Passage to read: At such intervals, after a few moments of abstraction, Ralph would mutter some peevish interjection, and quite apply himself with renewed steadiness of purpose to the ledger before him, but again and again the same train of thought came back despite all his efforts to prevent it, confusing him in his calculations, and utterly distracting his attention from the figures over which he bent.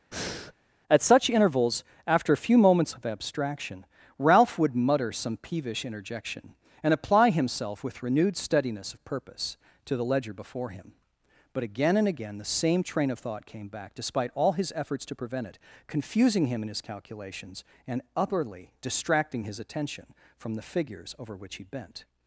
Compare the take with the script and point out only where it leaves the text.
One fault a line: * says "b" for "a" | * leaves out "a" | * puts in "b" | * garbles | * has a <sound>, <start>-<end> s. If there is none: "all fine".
* has a breath, 0.1-0.5 s
* leaves out "quite"